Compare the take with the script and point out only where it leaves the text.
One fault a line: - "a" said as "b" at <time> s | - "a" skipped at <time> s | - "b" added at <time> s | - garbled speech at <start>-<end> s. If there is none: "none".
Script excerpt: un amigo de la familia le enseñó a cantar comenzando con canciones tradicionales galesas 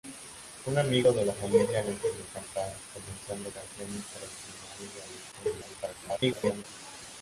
- "con" skipped at 3.5 s
- garbled speech at 5.3-6.6 s